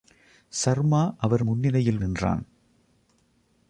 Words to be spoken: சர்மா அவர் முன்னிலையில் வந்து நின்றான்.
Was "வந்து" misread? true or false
true